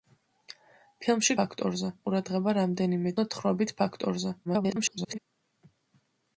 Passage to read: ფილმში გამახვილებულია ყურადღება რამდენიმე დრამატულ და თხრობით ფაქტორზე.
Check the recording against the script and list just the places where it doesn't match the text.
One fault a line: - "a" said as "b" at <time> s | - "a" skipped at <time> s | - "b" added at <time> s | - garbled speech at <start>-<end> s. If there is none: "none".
- "გამახვილებულია" said as "ფაქტორზე" at 1.4 s
- "დრამატულ" skipped at 3.1 s
- garbled speech at 4.4-5.2 s